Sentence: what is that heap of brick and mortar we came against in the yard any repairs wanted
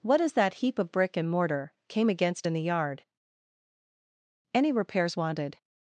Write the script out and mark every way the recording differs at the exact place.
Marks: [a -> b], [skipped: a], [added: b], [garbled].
what is that heap of brick and mortar [skipped: we] came against in the yard any repairs wanted